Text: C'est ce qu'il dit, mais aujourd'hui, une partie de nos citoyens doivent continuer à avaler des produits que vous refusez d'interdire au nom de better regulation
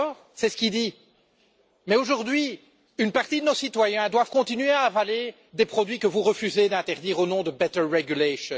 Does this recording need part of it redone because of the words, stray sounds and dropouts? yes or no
no